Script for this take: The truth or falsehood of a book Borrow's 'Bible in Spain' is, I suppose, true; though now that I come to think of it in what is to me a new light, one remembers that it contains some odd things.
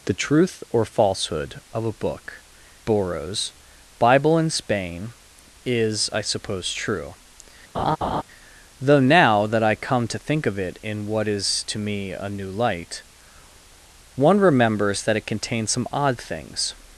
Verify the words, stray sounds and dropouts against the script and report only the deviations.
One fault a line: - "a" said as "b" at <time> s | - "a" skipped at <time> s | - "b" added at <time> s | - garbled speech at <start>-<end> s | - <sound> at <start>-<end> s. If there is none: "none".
- laugh at 7.7-8.2 s